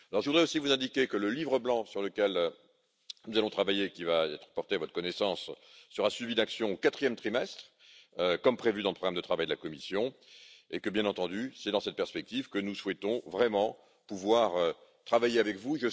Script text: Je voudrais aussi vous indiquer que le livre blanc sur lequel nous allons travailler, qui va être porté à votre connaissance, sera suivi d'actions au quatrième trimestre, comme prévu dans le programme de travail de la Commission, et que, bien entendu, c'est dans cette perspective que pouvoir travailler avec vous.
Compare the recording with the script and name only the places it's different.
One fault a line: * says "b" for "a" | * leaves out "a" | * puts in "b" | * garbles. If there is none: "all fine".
* puts in "nous souhaitons vraiment"